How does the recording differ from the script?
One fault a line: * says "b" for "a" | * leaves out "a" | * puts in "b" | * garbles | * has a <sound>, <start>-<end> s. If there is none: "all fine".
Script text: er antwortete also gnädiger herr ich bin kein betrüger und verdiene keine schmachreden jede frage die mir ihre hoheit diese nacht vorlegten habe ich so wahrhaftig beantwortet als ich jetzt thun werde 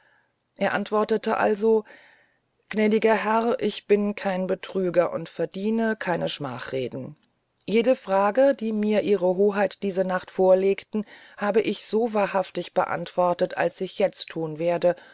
all fine